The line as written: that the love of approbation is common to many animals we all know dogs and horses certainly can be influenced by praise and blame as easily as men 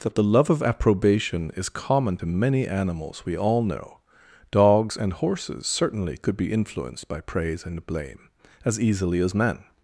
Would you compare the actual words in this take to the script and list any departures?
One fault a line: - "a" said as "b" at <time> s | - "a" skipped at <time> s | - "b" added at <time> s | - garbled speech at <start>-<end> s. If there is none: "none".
- "can" said as "could" at 6.2 s